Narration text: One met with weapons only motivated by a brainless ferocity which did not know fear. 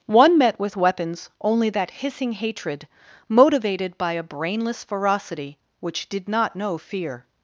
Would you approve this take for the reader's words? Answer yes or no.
no